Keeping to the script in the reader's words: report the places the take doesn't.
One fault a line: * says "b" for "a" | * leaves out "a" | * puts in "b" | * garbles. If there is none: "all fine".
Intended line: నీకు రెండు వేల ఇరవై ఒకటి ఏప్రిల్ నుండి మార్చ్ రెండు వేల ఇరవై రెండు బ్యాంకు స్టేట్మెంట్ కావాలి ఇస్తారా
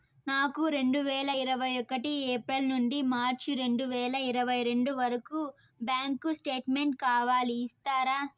* says "నాకు" for "నీకు"
* puts in "వరకు"